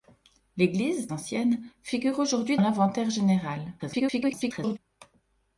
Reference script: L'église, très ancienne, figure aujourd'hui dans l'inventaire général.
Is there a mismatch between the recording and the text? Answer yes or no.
yes